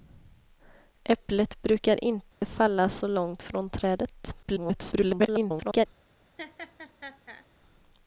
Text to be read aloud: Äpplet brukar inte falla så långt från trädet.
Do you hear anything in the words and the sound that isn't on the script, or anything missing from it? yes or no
yes